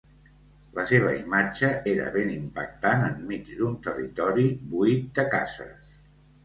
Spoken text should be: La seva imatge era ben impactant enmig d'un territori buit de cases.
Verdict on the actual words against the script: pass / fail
pass